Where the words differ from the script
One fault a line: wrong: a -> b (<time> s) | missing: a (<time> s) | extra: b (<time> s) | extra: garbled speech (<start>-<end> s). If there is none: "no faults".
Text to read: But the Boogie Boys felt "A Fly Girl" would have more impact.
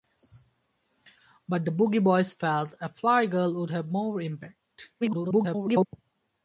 extra: garbled speech (5.0-5.9 s)